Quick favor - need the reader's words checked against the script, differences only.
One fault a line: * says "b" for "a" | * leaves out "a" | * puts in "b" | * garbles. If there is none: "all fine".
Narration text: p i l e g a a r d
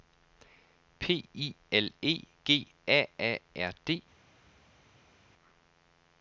all fine